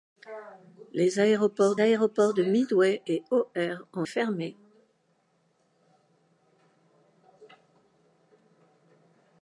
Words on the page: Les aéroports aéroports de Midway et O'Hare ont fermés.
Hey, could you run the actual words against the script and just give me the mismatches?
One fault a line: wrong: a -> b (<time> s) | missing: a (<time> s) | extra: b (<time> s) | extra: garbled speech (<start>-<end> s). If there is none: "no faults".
no faults